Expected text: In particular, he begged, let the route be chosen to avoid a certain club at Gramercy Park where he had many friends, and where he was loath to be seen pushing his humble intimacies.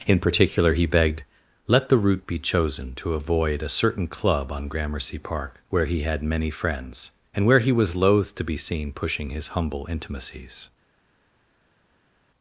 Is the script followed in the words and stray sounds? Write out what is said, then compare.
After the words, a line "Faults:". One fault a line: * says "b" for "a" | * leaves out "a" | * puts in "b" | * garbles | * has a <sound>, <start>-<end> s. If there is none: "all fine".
In particular, he begged, let the route be chosen to avoid a certain club on Gramercy Park where he had many friends, and where he was loath to be seen pushing his humble intimacies.
Faults:
* says "on" for "at"